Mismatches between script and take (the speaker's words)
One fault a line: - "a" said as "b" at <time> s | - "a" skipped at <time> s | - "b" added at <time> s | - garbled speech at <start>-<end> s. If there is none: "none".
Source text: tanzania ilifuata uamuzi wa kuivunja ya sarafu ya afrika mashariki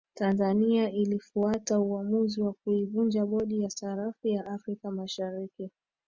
- "bodi" added at 3.2 s